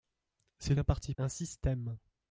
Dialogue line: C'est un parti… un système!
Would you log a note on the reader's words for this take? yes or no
no